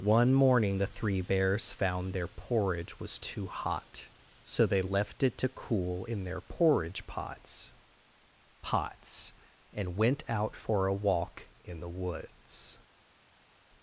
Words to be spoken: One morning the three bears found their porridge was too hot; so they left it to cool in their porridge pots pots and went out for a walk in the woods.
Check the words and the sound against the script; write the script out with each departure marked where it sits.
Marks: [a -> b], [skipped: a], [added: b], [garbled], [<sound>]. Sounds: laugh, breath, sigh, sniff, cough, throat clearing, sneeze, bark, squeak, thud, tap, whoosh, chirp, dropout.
One morning the three bears found their porridge was too hot; so they left it to cool in their porridge pots pots and went out for a walk in the woods.